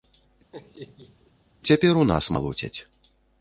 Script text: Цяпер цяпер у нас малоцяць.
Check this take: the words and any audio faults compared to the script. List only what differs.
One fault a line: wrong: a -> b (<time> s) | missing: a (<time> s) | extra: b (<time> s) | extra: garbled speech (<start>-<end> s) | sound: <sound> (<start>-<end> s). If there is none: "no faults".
sound: laugh (0.5-1.3 s)
missing: цяпер (2.0 s)